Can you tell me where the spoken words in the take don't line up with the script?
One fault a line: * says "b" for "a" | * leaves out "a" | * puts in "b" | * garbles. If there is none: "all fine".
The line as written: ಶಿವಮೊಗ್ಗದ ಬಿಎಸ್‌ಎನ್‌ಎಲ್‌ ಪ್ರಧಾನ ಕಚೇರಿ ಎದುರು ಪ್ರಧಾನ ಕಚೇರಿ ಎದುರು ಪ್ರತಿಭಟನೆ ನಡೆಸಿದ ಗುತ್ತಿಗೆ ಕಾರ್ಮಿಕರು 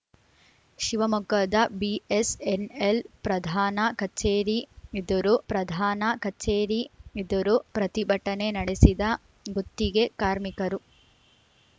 all fine